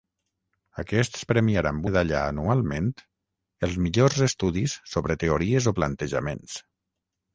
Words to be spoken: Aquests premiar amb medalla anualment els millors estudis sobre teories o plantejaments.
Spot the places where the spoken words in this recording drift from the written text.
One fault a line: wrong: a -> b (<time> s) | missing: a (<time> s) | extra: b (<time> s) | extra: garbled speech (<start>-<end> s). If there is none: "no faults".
no faults